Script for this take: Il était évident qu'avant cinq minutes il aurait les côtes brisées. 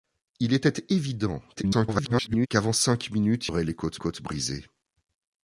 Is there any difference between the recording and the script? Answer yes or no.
yes